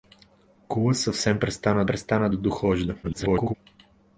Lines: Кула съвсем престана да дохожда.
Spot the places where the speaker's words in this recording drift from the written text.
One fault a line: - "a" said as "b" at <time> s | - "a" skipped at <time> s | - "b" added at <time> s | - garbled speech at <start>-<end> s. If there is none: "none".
- "престана" added at 1.9 s
- garbled speech at 3.0-3.5 s